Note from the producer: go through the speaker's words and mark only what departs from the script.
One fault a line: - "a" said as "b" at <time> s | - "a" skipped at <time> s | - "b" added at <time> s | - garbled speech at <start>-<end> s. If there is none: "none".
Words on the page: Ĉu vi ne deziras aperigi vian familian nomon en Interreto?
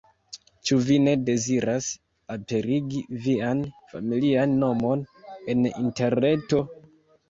none